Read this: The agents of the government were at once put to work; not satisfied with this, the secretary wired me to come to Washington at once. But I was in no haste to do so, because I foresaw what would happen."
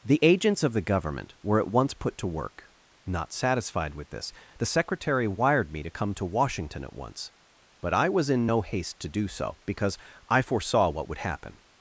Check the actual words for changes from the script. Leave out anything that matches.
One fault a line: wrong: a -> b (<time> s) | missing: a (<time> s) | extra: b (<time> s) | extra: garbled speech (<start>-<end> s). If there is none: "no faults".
no faults